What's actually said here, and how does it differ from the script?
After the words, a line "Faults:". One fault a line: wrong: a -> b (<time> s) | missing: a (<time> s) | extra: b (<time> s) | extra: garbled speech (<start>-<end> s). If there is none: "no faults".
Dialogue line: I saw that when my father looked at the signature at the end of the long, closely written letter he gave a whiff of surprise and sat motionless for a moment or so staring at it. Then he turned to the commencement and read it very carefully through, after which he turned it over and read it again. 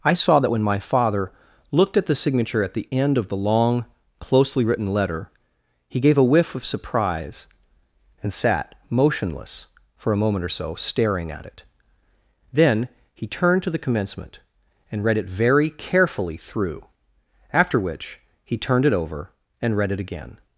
I saw that when my father looked at the signature at the end of the long, closely written letter he gave a whiff of surprise and sat motionless for a moment or so staring at it. Then he turned to the commencement and read it very carefully through, after which he turned it over and read it again.
Faults:
no faults